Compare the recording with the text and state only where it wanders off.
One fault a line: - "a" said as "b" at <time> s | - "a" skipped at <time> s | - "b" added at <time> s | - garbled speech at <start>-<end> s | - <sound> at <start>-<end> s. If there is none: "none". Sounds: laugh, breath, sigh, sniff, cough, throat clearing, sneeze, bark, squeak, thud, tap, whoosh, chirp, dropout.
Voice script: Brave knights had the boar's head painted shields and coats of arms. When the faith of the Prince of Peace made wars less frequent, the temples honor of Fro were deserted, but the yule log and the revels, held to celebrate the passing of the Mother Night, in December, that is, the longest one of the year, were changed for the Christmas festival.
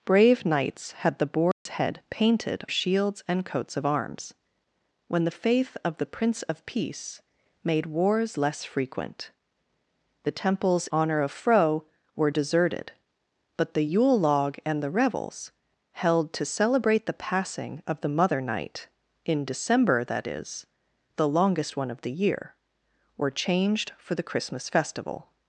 - dropout at 1.5-1.7 s